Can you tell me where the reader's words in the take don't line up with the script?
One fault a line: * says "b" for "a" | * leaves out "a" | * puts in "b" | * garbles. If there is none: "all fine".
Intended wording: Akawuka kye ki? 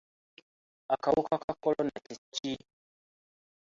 * puts in "ka kolona"